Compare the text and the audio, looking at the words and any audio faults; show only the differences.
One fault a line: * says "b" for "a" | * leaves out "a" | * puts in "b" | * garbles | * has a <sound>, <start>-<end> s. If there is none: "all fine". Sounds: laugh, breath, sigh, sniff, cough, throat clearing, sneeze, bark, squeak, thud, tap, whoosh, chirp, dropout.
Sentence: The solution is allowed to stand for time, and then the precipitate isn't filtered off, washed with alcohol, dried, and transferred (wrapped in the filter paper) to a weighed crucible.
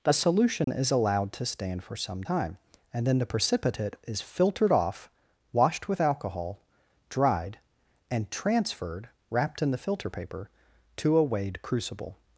* has a dropout, 0.6-0.7 s
* puts in "some"
* says "is" for "isn't"